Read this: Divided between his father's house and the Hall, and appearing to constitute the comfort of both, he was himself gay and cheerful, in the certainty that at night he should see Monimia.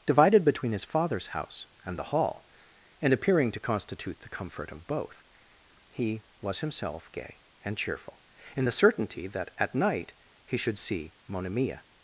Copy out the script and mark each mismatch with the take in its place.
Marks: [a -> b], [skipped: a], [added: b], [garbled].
Divided between his father's house and the Hall, and appearing to constitute the comfort of both, he was himself gay and cheerful, in the certainty that at night he should see Monimia.